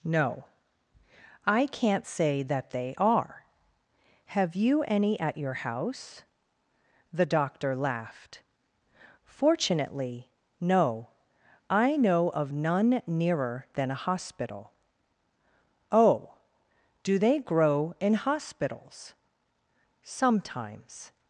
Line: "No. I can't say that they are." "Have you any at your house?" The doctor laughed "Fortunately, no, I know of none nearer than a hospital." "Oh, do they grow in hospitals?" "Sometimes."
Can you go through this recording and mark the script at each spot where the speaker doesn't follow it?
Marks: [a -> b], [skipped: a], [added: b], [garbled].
"No. I can't say that they are." "Have you any at your house?" The doctor laughed "Fortunately, no, I know of none nearer than a hospital." "Oh, do they grow in hospitals?" "Sometimes."